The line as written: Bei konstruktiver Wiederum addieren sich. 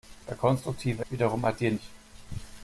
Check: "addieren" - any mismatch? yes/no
no